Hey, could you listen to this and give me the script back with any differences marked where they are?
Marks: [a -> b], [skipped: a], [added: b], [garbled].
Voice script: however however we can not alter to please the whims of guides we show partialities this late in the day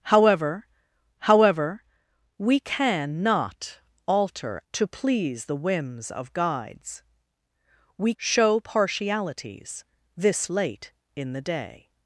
however however we can not alter to please the whims of guides we show partialities this late in the day